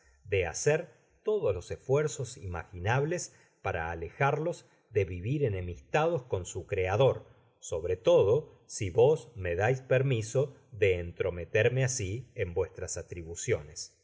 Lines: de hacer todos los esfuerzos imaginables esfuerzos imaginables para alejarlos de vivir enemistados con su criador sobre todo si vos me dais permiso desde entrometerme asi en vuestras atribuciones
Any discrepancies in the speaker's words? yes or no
yes